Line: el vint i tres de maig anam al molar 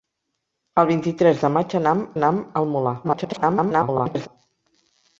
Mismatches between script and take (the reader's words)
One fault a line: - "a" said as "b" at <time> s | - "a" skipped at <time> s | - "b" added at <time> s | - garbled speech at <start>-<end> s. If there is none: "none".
- "anam" added at 2.2 s
- garbled speech at 3.0-4.3 s